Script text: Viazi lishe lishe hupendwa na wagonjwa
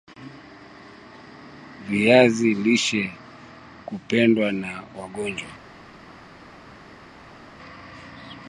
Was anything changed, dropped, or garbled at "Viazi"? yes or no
no